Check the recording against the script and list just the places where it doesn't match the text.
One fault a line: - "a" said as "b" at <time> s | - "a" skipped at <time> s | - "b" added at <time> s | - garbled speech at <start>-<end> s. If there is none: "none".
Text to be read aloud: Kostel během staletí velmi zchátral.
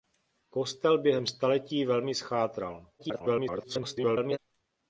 - garbled speech at 3.0-4.4 s